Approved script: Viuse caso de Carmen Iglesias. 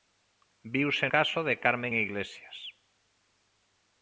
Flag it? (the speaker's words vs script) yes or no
no